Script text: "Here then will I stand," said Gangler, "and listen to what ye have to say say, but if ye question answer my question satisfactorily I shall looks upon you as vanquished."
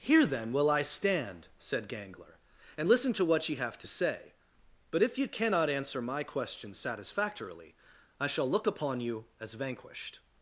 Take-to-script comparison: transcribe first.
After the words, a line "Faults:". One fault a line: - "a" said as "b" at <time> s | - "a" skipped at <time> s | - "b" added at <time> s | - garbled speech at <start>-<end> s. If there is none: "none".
"Here then will I stand," said Gangler, "and listen to what ye have to say, but if ye cannot answer my question satisfactorily I shall look upon you as vanquished."
Faults:
- "say" skipped at 4.3 s
- "question" said as "cannot" at 5.3 s
- "looks" said as "look" at 8.5 s